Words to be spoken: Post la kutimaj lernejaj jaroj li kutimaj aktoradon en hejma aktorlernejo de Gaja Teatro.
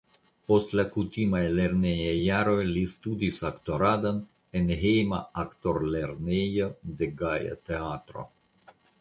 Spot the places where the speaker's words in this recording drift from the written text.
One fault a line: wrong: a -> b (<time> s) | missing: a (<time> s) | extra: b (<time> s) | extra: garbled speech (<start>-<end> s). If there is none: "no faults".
wrong: kutimaj -> studis (2.9 s)